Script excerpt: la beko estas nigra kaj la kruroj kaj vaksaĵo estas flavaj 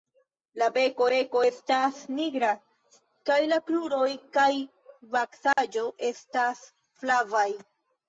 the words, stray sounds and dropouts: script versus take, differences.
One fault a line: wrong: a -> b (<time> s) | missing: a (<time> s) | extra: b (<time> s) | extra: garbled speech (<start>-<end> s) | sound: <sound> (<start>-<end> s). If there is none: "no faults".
extra: beko (1.1 s)
sound: dropout (5.5-5.6 s)